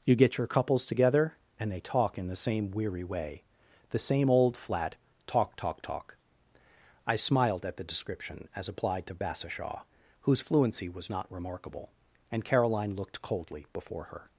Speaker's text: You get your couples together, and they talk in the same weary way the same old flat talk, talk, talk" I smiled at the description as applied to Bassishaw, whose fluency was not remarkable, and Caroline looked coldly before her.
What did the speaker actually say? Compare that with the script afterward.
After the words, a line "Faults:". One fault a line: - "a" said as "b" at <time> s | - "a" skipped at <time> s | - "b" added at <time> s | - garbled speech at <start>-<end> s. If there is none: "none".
You get your couples together, and they talk in the same weary way the same old flat talk, talk, talk" I smiled at the description as applied to Bassishaw, whose fluency was not remarkable, and Caroline looked coldly before her.
Faults:
none